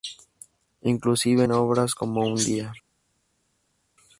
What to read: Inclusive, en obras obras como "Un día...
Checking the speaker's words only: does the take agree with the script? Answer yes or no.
no